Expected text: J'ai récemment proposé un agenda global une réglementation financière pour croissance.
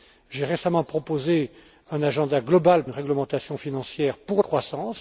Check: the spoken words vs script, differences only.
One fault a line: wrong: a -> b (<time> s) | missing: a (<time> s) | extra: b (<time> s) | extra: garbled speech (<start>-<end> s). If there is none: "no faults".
no faults